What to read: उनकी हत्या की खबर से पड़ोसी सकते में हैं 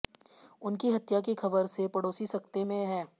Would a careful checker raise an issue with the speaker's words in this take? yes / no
no